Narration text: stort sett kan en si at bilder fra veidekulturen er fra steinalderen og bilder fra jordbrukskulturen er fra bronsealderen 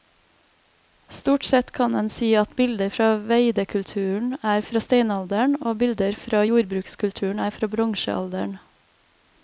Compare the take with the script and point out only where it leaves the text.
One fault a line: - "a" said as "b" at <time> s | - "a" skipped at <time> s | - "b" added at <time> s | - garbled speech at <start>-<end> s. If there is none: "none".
none